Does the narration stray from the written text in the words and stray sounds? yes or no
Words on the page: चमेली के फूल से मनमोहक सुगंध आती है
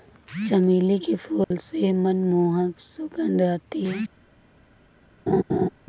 yes